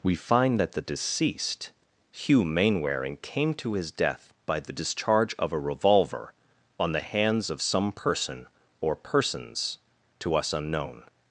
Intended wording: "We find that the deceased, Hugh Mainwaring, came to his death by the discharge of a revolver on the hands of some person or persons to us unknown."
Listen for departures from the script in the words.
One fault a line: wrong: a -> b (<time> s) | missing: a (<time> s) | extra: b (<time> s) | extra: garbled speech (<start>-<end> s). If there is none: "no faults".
no faults